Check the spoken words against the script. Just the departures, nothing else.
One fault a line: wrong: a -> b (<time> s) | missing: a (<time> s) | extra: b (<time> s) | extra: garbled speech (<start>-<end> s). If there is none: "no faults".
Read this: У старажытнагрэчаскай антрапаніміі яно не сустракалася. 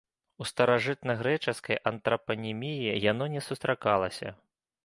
no faults